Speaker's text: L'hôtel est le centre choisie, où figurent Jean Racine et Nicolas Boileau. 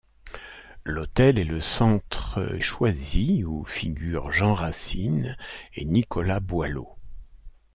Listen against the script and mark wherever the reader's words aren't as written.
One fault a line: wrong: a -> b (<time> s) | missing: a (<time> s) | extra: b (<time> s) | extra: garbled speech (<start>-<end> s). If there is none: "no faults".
no faults